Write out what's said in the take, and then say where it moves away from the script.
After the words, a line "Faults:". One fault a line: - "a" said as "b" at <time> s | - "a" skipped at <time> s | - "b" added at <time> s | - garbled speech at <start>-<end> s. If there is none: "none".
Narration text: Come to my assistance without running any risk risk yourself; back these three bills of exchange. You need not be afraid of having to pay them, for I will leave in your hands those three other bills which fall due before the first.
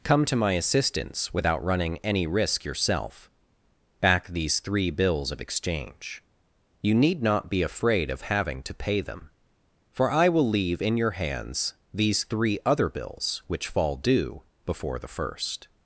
Come to my assistance without running any risk yourself; back these three bills of exchange. You need not be afraid of having to pay them, for I will leave in your hands these three other bills which fall due before the first.
Faults:
- "risk" skipped at 2.6 s
- "those" said as "these" at 11.9 s